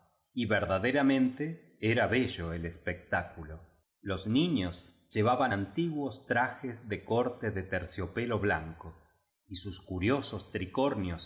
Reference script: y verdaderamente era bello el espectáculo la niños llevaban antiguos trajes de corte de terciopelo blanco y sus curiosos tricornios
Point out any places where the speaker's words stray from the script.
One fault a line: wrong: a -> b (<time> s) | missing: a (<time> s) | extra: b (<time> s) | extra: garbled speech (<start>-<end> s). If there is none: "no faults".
wrong: la -> los (4.0 s)